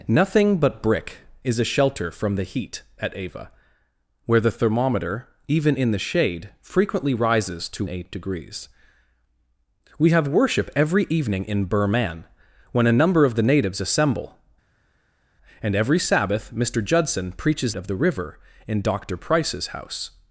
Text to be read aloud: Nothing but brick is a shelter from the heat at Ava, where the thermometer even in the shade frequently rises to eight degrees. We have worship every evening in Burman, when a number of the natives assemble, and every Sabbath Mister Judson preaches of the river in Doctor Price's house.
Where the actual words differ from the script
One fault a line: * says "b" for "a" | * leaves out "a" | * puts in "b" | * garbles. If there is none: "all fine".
all fine